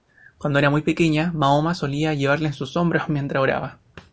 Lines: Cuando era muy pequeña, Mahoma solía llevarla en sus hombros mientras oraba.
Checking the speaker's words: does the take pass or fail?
pass